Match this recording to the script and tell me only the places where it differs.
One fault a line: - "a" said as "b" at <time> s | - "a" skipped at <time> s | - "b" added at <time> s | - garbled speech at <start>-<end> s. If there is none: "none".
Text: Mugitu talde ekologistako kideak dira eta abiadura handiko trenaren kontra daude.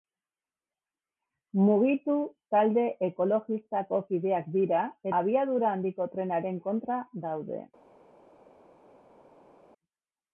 - "eta" skipped at 4.9 s